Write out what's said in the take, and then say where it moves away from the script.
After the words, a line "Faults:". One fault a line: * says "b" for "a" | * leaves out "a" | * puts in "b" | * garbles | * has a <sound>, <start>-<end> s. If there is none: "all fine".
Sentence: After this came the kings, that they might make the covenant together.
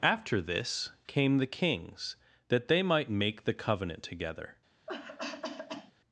After this came the kings, that they might make the covenant together.
Faults:
* has a cough, 4.9-5.9 s